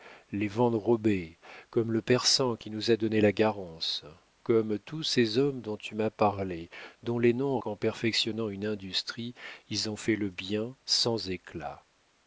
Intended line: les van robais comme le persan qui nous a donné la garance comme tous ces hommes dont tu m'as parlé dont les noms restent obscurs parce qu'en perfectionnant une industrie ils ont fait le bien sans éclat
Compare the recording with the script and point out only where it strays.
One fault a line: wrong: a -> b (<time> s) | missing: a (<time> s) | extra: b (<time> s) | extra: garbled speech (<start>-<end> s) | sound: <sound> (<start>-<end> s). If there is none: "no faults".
missing: restent obscurs parce (7.6 s)